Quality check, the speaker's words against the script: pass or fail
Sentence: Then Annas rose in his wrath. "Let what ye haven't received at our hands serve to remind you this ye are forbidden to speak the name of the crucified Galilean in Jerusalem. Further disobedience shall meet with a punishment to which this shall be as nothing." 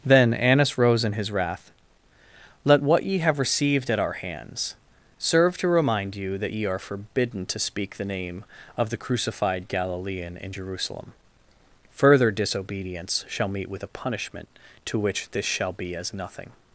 fail